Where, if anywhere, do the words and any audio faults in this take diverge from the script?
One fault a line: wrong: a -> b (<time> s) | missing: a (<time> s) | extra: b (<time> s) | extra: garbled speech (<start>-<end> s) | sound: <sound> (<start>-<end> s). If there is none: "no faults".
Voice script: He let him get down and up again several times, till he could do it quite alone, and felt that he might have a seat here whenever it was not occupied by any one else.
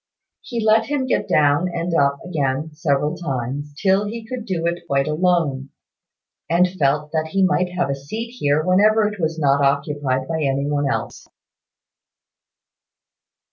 no faults